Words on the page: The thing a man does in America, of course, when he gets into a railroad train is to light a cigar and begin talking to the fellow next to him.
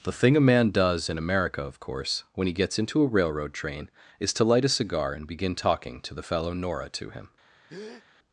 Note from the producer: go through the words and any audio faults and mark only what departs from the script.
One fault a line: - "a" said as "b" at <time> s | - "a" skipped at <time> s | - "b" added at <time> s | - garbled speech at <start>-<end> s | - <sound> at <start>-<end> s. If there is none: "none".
- "next" said as "nora" at 6.5 s
- breath at 7.7-8.1 s